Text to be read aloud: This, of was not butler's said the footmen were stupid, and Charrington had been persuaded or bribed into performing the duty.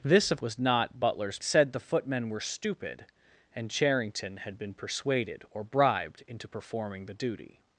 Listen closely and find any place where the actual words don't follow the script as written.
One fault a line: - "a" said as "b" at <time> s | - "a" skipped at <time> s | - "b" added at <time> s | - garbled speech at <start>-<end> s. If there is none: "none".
none